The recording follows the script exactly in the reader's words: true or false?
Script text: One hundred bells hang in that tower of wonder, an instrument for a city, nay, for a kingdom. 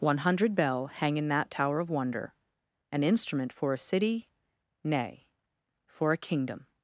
false